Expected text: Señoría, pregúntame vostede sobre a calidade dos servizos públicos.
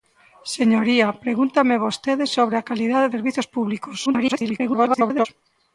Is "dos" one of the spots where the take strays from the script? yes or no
yes